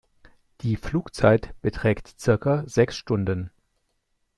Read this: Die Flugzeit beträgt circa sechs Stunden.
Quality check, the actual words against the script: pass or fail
pass